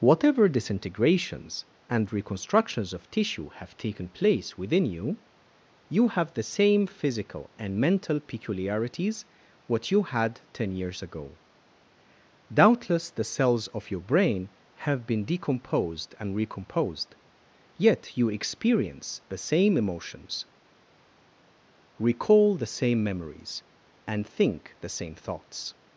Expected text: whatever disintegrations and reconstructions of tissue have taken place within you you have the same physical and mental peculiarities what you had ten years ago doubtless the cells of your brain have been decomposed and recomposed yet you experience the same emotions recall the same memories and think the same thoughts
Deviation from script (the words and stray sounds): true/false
false